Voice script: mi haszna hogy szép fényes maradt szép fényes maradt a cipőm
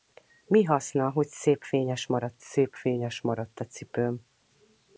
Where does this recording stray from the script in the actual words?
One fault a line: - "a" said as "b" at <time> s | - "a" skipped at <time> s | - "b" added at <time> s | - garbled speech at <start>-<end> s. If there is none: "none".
none